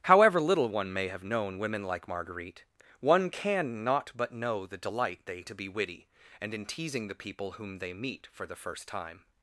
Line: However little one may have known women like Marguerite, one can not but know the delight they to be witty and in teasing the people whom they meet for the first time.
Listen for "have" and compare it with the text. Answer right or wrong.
right